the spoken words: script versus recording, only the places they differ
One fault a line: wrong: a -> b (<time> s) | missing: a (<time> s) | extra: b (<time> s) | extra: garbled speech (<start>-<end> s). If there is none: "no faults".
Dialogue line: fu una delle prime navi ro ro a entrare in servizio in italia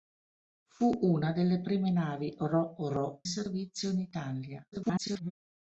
missing: a entrare in (3.2 s)
extra: garbled speech (4.7-5.3 s)